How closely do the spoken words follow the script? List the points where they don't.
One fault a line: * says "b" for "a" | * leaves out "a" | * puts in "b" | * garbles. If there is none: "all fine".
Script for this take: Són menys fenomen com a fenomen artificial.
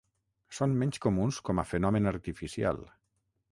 * says "comuns" for "fenomen"